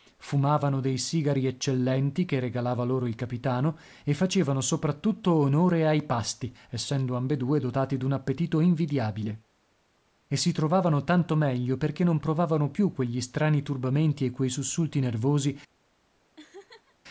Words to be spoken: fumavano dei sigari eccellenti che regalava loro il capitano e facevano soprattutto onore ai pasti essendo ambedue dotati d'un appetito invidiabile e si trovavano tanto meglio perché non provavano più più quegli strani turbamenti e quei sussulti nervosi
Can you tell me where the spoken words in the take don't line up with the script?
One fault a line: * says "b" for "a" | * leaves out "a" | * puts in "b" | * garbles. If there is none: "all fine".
* leaves out "più"